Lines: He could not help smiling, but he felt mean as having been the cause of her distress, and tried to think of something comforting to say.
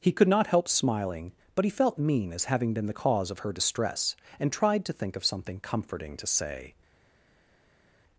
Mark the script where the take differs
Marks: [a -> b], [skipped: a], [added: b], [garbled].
He could not help smiling, but he felt mean as having been the cause of her distress, and tried to think of something comforting to say.